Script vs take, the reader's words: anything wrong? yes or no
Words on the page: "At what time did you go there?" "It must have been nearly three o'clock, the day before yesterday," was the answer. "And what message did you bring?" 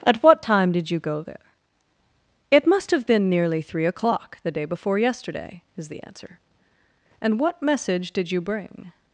yes